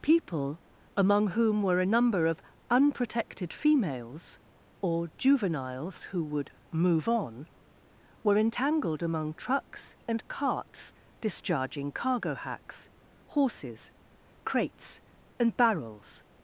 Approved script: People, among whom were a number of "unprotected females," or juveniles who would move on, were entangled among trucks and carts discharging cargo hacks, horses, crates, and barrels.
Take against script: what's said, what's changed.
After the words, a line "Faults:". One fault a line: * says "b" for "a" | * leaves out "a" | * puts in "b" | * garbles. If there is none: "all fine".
People, among whom were a number of "unprotected females," or juveniles who would move on, were entangled among trucks and carts discharging cargo hacks, horses, crates, and barrels.
Faults:
all fine